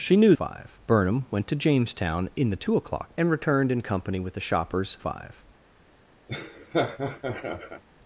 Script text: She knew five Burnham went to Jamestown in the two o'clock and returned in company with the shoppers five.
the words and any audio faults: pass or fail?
fail